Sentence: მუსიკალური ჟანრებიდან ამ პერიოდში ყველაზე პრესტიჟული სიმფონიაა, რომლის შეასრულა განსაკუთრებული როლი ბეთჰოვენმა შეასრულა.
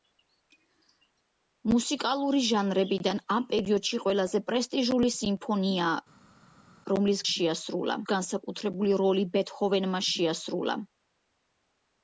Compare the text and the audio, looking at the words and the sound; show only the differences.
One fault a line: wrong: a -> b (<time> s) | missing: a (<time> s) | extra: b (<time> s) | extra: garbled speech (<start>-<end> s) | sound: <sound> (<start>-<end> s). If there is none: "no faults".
no faults